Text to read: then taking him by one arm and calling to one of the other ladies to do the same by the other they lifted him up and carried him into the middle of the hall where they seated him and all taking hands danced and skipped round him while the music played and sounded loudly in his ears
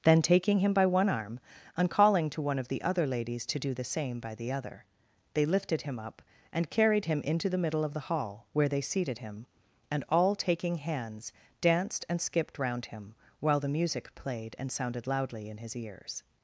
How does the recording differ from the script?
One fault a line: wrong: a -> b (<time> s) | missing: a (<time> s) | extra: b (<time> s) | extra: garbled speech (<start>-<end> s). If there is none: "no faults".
no faults